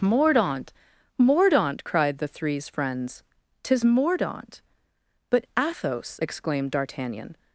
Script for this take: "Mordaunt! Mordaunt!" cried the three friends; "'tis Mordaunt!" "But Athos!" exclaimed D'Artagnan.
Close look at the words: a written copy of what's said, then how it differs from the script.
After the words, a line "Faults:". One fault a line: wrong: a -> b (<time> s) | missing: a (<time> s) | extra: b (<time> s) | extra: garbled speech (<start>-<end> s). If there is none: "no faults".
"Mordaunt! Mordaunt!" cried the threes friends; "'tis Mordaunt!" "But Athos!" exclaimed D'Artagnan.
Faults:
wrong: three -> threes (2.3 s)